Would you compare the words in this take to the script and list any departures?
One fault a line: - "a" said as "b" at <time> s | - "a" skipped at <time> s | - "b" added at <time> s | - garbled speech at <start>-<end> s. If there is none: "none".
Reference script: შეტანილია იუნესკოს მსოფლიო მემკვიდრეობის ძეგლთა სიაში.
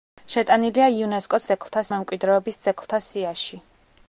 - "მსოფლიო" said as "ძეგლთა" at 1.5 s